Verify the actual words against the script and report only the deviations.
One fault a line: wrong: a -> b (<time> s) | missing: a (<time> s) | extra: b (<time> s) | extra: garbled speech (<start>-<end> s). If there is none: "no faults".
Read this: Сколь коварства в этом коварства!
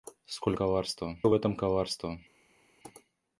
no faults